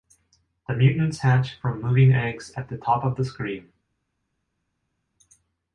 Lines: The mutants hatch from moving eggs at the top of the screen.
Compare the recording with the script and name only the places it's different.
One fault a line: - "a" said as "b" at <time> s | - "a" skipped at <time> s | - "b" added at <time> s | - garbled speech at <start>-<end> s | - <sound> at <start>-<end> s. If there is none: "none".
none